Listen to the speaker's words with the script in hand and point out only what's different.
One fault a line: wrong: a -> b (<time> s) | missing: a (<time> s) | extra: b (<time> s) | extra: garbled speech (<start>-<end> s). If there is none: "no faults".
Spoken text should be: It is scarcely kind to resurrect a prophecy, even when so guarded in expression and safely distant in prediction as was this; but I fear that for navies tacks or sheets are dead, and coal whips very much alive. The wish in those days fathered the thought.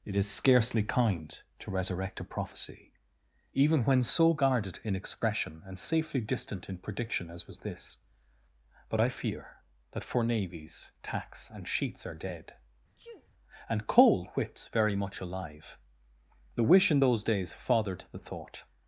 wrong: or -> and (11.5 s)